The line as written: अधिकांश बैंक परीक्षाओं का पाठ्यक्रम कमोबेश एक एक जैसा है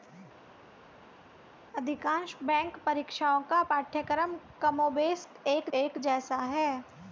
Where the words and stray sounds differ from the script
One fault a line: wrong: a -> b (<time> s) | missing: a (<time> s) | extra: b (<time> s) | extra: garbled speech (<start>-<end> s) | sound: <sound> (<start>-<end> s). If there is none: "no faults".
no faults